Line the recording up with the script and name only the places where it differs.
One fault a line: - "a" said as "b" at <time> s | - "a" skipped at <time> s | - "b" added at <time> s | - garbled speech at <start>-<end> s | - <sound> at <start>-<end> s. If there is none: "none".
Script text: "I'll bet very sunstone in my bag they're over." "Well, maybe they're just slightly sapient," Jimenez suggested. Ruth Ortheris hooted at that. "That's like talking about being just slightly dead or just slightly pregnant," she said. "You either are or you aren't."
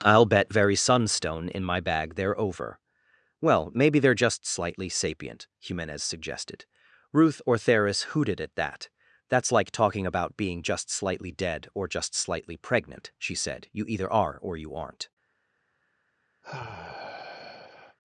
- sigh at 16.4-18.0 s